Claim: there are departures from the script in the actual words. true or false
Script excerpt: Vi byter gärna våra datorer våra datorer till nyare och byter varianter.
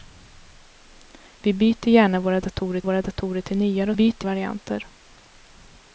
false